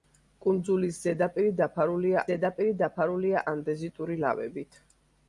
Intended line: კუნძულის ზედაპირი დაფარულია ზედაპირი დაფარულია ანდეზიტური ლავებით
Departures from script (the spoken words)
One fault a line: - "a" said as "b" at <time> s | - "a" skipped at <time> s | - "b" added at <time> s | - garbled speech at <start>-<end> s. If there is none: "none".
none